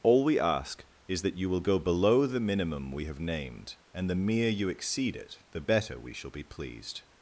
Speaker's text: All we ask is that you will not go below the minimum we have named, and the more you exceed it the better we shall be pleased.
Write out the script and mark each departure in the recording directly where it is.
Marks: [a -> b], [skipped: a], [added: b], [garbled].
All we ask is that you will [skipped: not] go below the minimum we have named, and the [more -> mere] you exceed it the better we shall be pleased.